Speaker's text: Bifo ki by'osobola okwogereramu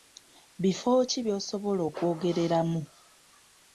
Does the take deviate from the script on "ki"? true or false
false